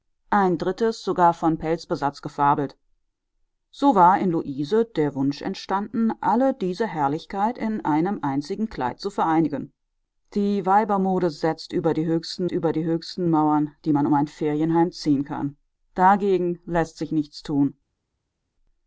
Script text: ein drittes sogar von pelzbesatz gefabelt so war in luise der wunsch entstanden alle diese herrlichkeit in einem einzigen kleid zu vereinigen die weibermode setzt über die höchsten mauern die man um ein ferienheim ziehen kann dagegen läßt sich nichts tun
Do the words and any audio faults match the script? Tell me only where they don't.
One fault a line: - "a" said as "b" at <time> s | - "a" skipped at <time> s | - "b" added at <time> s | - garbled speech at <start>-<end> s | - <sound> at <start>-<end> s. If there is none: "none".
- "über die höchsten" added at 12.5 s